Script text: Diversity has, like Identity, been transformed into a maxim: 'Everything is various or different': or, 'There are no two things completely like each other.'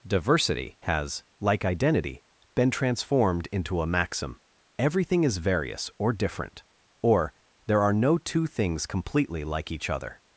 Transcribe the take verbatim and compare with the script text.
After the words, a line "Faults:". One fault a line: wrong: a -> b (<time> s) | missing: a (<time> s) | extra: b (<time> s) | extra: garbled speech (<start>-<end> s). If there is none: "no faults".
Diversity has, like Identity, been transformed into a maxim: 'Everything is various or different': or, 'There are no two things completely like each other.'
Faults:
no faults